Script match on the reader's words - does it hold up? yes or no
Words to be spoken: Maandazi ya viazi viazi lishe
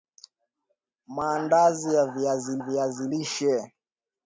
yes